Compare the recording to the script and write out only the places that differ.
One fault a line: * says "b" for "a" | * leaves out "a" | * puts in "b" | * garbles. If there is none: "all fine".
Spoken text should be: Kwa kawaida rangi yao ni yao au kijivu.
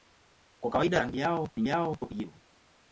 all fine